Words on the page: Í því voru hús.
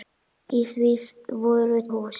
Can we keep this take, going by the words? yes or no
yes